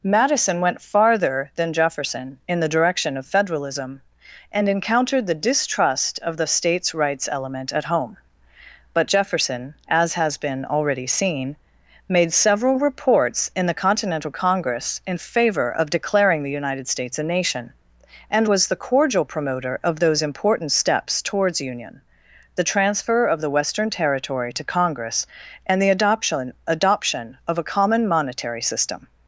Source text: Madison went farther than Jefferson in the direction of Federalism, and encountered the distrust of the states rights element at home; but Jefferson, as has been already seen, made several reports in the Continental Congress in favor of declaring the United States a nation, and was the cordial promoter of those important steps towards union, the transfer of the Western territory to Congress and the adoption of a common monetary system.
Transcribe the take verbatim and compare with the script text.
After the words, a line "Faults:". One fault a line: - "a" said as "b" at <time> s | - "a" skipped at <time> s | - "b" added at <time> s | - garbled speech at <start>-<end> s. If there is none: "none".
Madison went farther than Jefferson in the direction of Federalism, and encountered the distrust of the states rights element at home; but Jefferson, as has been already seen, made several reports in the Continental Congress in favor of declaring the United States a nation, and was the cordial promoter of those important steps towards union, the transfer of the Western territory to Congress and the adoption adoption of a common monetary system.
Faults:
- "adoption" added at 26.7 s